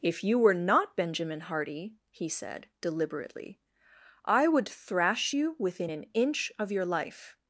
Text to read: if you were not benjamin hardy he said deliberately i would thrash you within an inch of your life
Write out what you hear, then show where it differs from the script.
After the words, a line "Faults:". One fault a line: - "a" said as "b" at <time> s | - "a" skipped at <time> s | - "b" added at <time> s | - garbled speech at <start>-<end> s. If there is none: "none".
if you were not benjamin hardy he said deliberately i would thrash you within an inch of your life
Faults:
none